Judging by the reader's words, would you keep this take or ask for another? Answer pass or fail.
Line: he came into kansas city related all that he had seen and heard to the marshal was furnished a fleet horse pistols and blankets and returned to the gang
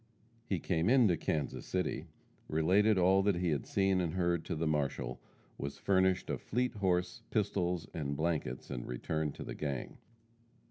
pass